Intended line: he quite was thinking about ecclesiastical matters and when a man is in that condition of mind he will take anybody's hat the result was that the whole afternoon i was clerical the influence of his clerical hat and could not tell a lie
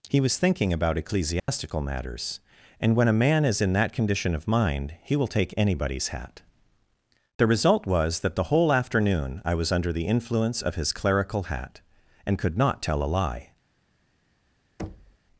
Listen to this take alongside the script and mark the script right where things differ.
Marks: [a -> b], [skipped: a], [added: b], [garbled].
he [skipped: quite] was thinking about ecclesiastical matters and when a man is in that condition of mind he will take anybody's hat the result was that the whole afternoon i was [clerical -> under] the influence of his clerical hat and could not tell a lie